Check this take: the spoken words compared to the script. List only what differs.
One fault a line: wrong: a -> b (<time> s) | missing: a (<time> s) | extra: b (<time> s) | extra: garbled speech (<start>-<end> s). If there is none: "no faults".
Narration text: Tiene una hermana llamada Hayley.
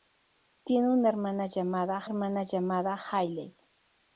extra: hermana llamada (2.0 s)